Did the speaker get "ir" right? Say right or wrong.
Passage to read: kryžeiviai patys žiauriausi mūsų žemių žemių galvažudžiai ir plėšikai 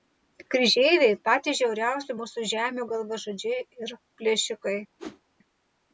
right